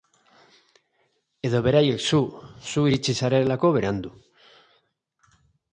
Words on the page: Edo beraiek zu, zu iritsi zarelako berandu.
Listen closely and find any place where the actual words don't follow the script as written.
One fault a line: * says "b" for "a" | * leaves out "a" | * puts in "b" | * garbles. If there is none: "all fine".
all fine